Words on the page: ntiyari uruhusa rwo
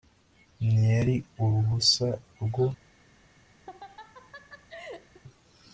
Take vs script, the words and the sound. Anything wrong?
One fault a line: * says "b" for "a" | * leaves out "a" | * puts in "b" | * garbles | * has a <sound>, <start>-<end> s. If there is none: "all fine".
* has a laugh, 3.7-5.2 s